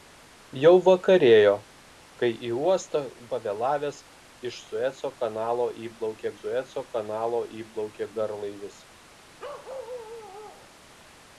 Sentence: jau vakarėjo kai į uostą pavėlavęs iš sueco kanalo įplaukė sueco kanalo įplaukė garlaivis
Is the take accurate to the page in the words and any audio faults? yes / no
no